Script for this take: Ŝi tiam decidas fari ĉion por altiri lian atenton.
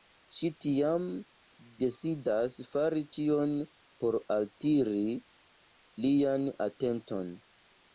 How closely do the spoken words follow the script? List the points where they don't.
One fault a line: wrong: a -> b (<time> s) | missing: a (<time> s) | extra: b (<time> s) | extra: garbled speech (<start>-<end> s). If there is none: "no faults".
no faults